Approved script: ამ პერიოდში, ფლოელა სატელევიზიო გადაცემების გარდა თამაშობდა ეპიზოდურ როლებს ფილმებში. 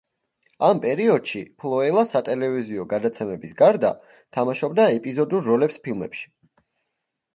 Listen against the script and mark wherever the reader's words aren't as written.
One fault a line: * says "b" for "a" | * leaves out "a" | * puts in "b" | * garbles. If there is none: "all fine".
all fine